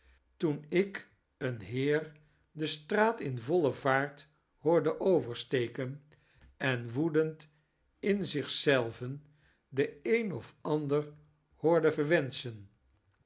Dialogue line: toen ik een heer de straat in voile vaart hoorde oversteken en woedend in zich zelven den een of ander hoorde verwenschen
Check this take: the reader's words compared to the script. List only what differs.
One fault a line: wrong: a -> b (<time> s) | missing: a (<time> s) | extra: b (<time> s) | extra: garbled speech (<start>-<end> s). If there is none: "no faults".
no faults